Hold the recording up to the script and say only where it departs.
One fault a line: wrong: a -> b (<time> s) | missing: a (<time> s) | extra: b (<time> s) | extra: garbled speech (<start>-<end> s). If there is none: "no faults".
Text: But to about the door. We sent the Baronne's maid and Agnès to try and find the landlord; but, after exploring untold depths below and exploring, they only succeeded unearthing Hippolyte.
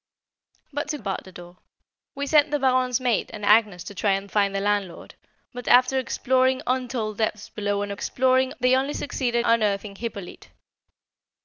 no faults